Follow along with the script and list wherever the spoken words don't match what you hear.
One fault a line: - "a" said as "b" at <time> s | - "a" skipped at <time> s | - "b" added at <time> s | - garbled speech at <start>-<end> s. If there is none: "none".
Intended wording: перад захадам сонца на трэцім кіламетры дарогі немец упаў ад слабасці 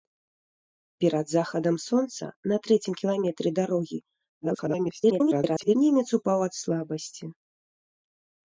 - garbled speech at 4.4-5.7 s